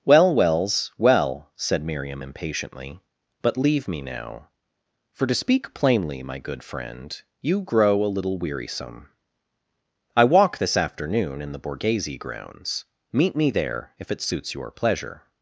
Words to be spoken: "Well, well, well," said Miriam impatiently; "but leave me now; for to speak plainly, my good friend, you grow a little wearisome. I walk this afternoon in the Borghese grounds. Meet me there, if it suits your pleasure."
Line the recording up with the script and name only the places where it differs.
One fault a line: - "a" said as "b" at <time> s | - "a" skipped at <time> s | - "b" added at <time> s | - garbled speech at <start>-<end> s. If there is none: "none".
- "well" said as "wells" at 0.3 s